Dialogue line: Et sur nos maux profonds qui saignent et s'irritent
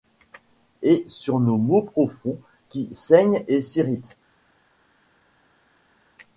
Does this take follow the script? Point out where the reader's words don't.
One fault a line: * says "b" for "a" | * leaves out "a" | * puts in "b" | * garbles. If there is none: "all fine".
all fine